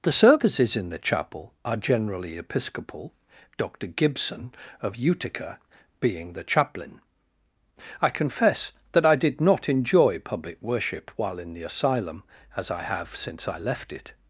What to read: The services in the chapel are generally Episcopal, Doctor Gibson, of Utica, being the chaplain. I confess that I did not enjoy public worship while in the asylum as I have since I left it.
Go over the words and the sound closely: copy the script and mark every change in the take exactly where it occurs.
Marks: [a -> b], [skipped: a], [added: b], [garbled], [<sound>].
The services in the chapel are generally Episcopal, Doctor Gibson, of Utica, being the chaplain. I confess that I did not enjoy public worship while in the asylum as I have since I left it.